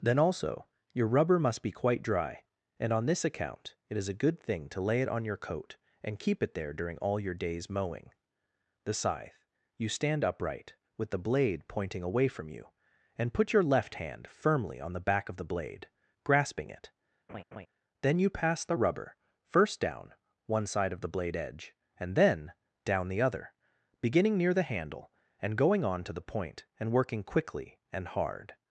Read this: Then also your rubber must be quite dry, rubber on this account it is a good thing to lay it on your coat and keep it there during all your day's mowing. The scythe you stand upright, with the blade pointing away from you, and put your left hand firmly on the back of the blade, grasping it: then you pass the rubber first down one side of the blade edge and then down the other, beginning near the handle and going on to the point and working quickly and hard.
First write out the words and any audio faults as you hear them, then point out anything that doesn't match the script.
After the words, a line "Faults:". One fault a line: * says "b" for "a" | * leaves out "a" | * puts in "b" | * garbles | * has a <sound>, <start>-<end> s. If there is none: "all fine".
Then also your rubber must be quite dry, and on this account it is a good thing to lay it on your coat and keep it there during all your day's mowing. The scythe you stand upright, with the blade pointing away from you, and put your left hand firmly on the back of the blade, grasping it: then you pass the rubber first down one side of the blade edge and then down the other, beginning near the handle and going on to the point and working quickly and hard.
Faults:
* says "and" for "rubber"
* has a laugh, 17.3-17.7 s